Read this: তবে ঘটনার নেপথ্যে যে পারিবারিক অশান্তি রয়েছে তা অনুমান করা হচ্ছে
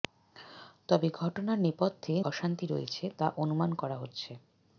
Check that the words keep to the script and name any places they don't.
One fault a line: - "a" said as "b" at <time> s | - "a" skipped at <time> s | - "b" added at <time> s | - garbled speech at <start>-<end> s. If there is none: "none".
- "যে পারিবারিক" skipped at 2.1 s